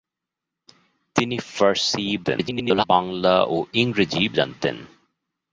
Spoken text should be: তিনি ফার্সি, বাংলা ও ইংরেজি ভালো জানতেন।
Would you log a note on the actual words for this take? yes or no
yes